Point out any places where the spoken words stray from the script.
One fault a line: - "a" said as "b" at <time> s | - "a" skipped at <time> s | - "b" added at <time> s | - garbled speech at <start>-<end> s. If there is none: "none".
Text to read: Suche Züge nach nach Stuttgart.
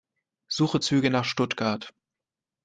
- "nach" skipped at 1.2 s